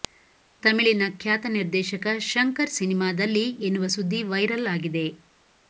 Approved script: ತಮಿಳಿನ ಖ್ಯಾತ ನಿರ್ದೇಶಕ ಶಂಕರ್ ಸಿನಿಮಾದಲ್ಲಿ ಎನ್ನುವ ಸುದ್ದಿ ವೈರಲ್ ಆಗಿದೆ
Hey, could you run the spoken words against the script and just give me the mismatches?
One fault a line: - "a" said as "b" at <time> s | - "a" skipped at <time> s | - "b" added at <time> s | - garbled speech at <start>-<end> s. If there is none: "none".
none